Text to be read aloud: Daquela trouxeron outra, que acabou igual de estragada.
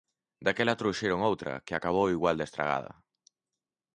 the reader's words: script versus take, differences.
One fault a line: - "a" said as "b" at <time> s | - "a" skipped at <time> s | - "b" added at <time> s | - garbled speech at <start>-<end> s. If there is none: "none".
none